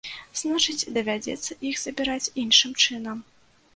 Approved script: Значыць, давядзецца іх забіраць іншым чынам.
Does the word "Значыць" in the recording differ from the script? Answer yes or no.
no